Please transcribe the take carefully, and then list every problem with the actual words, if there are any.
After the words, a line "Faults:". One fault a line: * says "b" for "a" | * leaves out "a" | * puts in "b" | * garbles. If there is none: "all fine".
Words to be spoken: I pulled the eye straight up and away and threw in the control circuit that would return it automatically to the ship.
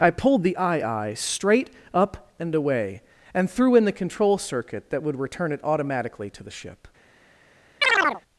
I pulled the eye eye straight up and away and threw in the control circuit that would return it automatically to the ship.
Faults:
* puts in "eye"